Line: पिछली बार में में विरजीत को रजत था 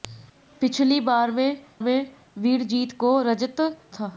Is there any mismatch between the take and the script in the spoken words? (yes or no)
no